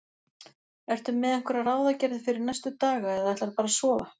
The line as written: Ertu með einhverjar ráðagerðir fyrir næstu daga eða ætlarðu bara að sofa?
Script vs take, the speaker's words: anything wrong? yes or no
no